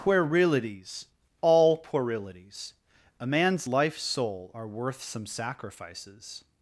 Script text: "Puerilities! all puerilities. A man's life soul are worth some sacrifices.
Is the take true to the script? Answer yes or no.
yes